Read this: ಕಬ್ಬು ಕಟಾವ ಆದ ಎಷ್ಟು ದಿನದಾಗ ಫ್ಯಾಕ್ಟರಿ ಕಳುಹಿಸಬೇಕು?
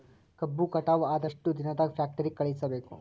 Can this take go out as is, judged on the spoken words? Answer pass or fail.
pass